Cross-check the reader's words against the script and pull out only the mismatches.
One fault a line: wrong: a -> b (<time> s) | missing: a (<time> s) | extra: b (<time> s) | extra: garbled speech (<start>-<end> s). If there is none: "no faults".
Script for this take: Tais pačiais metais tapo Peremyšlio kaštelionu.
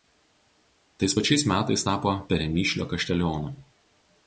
no faults